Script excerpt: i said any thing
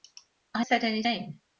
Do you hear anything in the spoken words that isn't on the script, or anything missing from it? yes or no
no